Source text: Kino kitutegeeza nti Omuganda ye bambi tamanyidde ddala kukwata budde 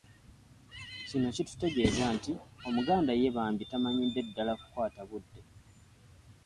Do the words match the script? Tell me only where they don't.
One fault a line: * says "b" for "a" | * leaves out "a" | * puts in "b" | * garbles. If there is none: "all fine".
all fine